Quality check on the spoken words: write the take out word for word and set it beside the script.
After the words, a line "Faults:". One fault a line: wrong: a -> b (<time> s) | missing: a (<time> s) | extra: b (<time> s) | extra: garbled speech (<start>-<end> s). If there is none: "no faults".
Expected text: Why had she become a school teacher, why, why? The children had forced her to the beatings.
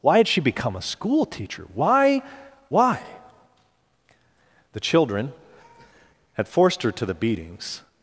Why had she become a school teacher, why, why? The children had forced her to the beatings.
Faults:
no faults